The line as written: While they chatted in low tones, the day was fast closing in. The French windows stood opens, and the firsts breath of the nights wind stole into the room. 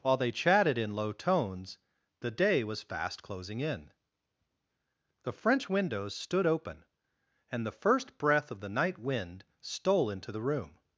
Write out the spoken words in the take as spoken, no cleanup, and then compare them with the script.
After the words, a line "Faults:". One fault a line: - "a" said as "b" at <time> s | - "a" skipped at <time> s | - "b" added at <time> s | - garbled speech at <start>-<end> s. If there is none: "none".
While they chatted in low tones, the day was fast closing in. The French windows stood open, and the first breath of the night wind stole into the room.
Faults:
- "opens" said as "open" at 6.5 s
- "firsts" said as "first" at 7.7 s
- "nights" said as "night" at 8.7 s